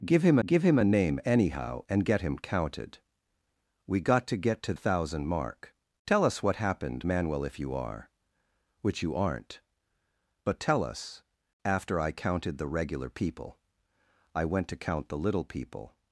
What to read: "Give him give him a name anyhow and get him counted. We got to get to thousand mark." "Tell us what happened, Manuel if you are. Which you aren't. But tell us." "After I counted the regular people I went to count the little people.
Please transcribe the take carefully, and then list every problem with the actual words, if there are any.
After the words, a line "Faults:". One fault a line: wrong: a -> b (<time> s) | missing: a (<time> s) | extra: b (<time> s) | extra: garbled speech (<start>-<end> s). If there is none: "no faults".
"Give him give him a name anyhow and get him counted. We got to get to thousand mark." "Tell us what happened, Manuel if you are. Which you aren't. But tell us." "After I counted the regular people I went to count the little people.
Faults:
no faults